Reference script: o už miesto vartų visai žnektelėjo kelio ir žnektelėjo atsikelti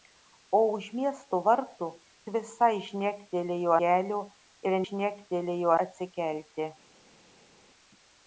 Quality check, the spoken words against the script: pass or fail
pass